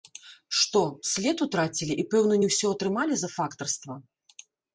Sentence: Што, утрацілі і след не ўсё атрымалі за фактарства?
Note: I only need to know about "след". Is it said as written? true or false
false